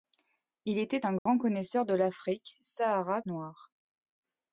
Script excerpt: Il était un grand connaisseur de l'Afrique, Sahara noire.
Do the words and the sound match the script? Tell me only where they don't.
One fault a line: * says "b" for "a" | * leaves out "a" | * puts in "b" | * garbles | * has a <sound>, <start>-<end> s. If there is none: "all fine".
* has a dropout, 1.2-1.3 s